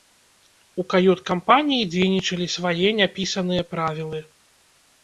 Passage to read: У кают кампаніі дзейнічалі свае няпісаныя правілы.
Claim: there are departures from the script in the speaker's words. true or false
false